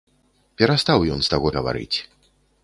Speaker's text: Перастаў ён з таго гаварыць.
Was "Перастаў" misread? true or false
false